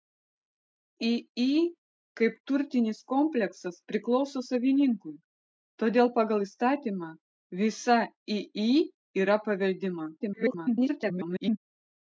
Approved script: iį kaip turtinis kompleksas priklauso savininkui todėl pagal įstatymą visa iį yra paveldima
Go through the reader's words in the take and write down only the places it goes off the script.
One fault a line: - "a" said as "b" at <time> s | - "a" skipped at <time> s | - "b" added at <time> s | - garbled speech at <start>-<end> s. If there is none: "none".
- garbled speech at 10.2-11.6 s